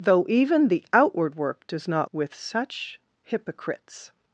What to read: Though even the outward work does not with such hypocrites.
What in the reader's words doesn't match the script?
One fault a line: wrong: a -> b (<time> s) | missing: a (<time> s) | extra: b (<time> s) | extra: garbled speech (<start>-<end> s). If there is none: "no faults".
no faults